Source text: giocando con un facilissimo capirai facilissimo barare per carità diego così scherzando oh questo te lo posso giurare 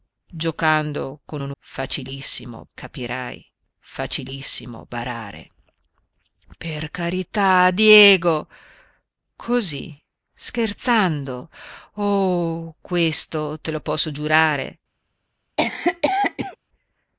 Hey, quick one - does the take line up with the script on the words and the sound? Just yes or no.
no